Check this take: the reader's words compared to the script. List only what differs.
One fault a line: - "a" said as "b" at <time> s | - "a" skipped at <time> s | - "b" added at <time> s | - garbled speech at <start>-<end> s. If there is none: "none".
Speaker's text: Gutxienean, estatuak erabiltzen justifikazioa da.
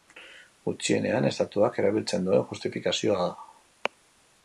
- "duen" added at 2.3 s